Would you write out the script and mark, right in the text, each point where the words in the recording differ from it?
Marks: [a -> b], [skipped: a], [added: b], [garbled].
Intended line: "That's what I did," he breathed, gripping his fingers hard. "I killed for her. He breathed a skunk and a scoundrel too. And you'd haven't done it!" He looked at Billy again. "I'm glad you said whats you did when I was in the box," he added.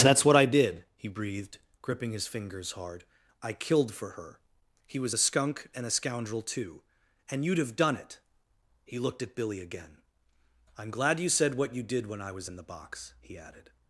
"That's what I did," he breathed, gripping his fingers hard. "I killed for her. He [breathed -> was] a skunk and a scoundrel too. And you'd [haven't -> have] done it!" He looked at Billy again. "I'm glad you said [whats -> what] you did when I was in the box," he added.